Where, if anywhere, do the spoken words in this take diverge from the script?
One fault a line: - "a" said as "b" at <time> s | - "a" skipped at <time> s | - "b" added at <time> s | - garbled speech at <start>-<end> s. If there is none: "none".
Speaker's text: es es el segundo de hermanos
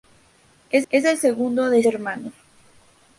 none